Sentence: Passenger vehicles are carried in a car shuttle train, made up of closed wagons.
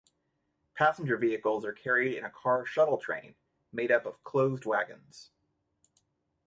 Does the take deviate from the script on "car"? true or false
false